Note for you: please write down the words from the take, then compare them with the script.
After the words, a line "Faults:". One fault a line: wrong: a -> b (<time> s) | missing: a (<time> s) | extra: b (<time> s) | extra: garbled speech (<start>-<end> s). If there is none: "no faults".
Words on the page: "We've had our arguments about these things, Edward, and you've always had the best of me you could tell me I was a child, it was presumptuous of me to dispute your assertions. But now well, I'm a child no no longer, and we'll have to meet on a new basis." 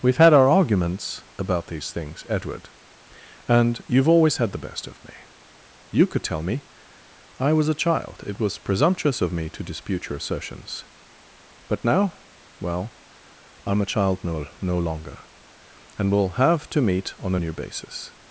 "We've had our arguments about these things, Edward, and you've always had the best of me you could tell me I was a child, it was presumptuous of me to dispute your assertions. But now well, I'm a child no no longer, and we'll have to meet on a new basis."
Faults:
no faults